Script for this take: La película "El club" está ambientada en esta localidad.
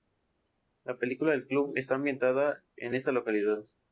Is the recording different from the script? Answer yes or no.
no